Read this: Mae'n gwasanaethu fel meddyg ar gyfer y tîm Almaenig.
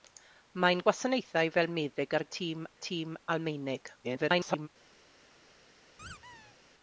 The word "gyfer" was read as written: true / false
false